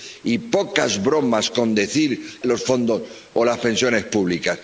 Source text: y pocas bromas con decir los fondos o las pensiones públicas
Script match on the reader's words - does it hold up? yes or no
yes